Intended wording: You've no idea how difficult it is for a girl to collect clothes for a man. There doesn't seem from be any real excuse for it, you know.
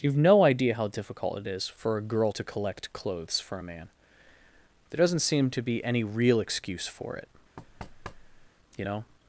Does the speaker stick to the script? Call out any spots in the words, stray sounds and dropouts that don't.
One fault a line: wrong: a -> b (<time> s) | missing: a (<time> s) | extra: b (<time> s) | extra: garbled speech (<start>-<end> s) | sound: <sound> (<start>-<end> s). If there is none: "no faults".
wrong: from -> to (5.5 s)
sound: thud (7.6-8.5 s)